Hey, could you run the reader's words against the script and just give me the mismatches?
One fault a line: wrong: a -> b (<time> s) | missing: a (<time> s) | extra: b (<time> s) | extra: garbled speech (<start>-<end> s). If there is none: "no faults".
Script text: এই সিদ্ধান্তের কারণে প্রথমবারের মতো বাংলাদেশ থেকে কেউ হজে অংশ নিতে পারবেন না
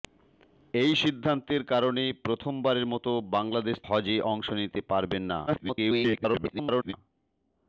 missing: থেকে কেউ (3.8 s)
extra: garbled speech (5.5-6.9 s)